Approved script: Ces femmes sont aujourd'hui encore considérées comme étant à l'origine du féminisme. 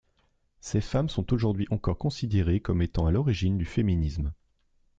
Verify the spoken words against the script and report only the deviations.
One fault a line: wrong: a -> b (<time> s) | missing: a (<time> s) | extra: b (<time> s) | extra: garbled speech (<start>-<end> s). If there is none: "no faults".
no faults